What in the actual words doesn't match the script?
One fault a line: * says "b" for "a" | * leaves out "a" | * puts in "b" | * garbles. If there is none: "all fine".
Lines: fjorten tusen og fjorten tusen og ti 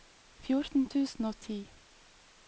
* leaves out "fjorten tusen og"